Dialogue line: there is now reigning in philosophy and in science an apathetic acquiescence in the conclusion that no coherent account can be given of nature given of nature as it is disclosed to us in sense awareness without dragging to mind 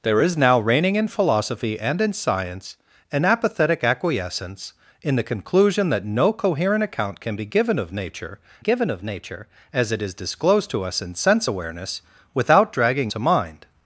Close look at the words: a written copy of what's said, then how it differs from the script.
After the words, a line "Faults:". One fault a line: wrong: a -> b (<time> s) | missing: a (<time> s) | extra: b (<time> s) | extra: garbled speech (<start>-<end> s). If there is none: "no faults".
there is now reigning in philosophy and in science an apathetic acquiescence in the conclusion that no coherent account can be given of nature given of nature as it is disclosed to us in sense awareness without dragging to mind
Faults:
no faults